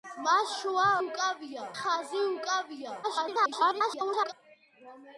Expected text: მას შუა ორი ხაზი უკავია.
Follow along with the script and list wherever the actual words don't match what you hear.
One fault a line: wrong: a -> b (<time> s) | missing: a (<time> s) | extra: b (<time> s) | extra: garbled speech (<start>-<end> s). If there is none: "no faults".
wrong: ორი -> უკავია (1.0 s)
extra: garbled speech (3.0-4.3 s)